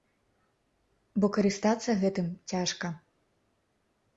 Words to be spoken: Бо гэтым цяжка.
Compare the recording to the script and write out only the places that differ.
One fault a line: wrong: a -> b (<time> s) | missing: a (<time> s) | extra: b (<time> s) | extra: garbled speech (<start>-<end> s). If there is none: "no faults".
extra: карыстацца (1.4 s)